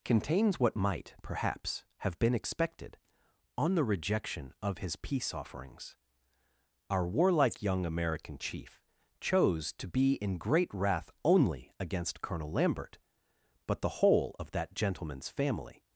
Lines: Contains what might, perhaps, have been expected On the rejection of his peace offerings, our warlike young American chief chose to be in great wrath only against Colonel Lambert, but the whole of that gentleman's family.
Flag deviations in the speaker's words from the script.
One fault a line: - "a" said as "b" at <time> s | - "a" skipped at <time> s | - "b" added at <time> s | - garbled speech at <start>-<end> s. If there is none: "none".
none